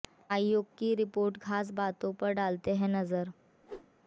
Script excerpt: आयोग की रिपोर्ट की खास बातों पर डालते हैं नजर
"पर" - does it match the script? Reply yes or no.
yes